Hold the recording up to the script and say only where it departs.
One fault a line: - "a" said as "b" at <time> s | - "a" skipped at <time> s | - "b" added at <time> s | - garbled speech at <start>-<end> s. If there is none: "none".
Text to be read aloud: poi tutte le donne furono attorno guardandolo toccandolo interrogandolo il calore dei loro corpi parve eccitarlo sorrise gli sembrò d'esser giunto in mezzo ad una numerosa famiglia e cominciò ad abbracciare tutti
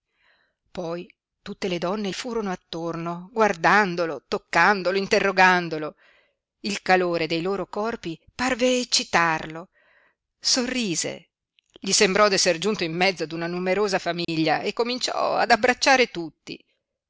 none